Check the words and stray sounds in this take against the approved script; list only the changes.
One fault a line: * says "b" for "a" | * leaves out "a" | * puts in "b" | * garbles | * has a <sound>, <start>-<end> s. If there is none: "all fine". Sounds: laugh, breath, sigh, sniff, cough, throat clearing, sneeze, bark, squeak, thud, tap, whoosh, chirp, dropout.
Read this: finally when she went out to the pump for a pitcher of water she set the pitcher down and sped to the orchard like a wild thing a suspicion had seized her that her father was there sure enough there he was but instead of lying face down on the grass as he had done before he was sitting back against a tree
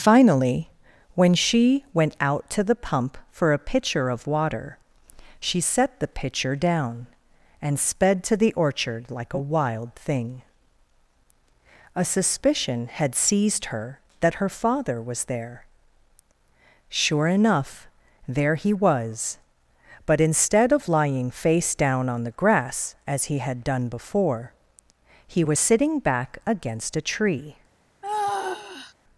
* has a sigh, 28.0-28.9 s